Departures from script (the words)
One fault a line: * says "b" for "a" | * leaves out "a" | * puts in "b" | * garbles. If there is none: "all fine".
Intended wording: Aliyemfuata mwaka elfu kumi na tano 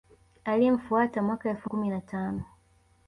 all fine